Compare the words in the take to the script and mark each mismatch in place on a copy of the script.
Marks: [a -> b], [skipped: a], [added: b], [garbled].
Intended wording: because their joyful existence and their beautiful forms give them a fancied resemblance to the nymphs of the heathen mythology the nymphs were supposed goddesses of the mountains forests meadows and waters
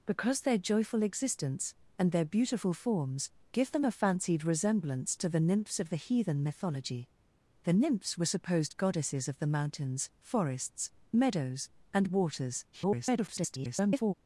because their joyful existence and their beautiful forms give them a fancied resemblance to the nymphs of the heathen mythology the nymphs were supposed goddesses of the mountains forests meadows and waters [garbled]